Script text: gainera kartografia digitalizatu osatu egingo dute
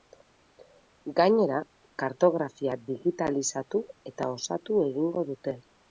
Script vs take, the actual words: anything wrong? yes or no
yes